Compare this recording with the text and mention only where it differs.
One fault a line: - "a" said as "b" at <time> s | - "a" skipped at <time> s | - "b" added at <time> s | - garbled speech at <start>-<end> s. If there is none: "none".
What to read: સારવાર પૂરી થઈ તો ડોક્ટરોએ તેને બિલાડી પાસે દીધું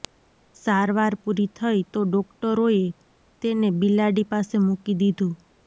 - "મૂકી" added at 4.7 s